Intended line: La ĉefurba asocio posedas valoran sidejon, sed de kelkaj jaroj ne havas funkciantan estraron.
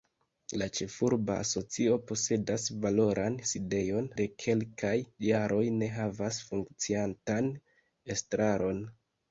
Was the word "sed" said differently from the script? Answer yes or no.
yes